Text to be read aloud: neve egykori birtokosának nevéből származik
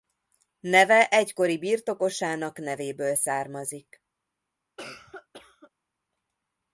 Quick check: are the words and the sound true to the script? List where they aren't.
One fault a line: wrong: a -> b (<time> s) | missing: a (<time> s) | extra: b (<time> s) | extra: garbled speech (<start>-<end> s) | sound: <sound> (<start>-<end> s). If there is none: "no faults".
sound: cough (4.8-5.7 s)